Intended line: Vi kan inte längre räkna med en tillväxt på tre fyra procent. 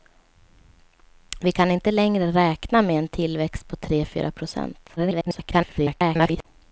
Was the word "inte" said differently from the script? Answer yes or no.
no